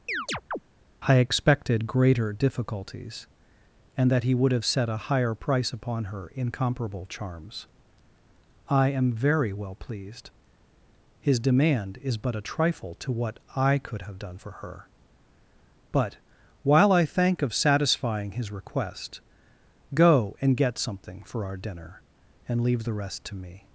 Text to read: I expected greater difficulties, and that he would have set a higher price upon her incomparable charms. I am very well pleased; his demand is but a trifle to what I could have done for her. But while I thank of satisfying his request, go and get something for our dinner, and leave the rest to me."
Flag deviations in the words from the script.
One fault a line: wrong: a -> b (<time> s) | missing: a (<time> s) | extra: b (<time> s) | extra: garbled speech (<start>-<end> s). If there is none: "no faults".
no faults